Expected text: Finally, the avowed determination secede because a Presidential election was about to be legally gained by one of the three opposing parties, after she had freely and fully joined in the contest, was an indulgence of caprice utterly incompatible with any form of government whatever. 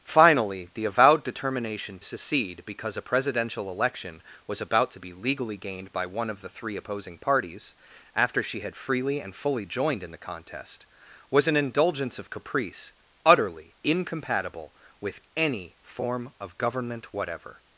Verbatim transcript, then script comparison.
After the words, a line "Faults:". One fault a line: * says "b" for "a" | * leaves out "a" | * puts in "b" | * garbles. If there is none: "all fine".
Finally, the avowed determination secede because a Presidential election was about to be legally gained by one of the three opposing parties, after she had freely and fully joined in the contest, was an indulgence of caprice utterly incompatible with any form of government whatever.
Faults:
all fine